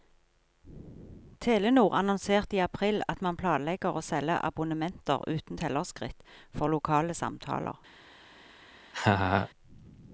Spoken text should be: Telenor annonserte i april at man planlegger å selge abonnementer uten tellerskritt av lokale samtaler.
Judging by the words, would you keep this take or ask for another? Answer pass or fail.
fail